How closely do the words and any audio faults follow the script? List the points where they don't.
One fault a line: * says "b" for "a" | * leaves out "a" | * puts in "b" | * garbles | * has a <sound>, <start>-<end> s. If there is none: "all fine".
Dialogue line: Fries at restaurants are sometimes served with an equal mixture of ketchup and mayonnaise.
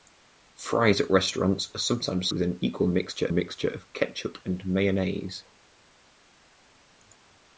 * leaves out "served"
* puts in "mixture"